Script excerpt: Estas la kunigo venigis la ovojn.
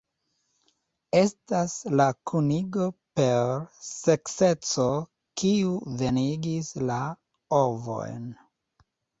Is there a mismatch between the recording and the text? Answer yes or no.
yes